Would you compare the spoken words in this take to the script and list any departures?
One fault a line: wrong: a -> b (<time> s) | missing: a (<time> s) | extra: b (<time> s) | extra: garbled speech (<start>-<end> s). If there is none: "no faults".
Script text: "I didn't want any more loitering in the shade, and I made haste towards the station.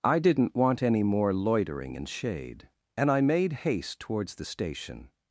missing: the (2.0 s)